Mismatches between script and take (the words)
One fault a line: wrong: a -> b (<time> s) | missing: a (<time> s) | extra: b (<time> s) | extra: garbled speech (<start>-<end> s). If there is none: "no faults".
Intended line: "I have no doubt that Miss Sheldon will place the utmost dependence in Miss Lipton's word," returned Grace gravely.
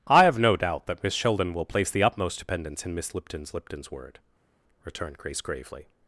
extra: Lipton's (3.5 s)